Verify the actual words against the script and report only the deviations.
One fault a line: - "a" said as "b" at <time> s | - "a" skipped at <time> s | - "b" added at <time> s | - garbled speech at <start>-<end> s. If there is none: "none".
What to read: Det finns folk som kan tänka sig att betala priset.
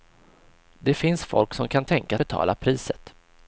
- "sig att" skipped at 2.2 s